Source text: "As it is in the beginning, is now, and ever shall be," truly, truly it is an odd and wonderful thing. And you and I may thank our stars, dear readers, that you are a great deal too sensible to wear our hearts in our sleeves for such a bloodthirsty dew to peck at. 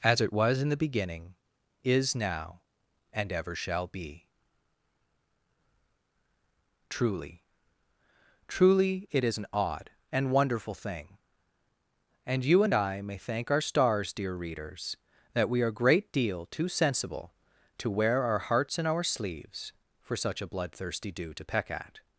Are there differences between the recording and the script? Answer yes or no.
yes